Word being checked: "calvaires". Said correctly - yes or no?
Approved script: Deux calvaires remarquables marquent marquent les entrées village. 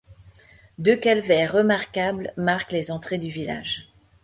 yes